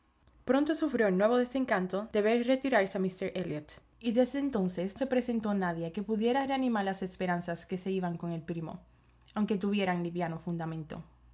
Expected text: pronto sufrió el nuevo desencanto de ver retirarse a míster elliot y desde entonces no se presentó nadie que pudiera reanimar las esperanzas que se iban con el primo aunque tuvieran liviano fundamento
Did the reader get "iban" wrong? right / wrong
right